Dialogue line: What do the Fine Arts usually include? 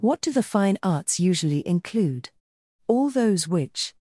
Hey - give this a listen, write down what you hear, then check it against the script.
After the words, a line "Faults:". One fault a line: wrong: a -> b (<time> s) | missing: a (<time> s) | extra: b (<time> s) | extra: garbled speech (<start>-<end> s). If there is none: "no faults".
What do the Fine Arts usually include? All those which
Faults:
extra: All those which (2.9 s)